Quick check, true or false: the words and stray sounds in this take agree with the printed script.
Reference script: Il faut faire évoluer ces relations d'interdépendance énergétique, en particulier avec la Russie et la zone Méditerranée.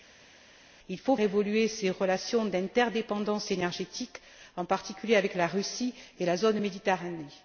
false